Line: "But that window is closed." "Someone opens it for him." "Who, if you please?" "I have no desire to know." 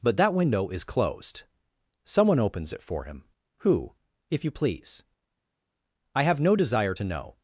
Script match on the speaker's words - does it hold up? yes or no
yes